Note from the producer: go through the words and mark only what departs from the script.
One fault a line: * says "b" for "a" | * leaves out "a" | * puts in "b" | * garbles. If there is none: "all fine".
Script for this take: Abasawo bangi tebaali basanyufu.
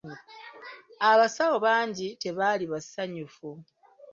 all fine